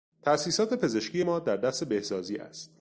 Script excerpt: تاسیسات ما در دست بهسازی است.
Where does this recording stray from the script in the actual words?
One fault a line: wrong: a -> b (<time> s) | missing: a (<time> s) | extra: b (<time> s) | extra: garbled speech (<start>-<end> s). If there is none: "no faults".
extra: پزشکی (0.7 s)